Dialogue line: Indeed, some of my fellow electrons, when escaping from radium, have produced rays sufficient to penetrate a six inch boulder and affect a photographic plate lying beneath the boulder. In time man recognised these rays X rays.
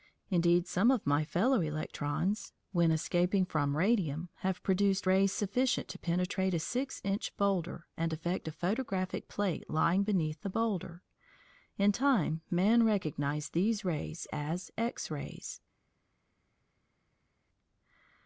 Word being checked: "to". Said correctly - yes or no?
yes